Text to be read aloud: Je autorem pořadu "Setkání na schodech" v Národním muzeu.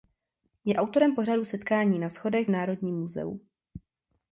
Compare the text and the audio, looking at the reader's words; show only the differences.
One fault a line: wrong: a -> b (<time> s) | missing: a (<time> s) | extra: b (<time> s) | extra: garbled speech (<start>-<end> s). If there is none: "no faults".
no faults